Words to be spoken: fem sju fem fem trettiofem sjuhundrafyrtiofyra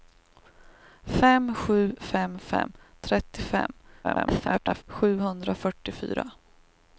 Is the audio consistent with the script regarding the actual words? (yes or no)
no